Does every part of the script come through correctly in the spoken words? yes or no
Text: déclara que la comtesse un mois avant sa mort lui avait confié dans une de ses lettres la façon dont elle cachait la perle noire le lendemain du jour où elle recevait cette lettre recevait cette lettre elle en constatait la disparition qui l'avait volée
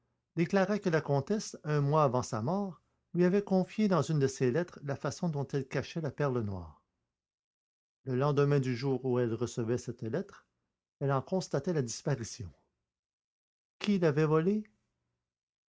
no